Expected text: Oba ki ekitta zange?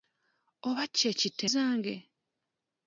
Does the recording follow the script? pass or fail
pass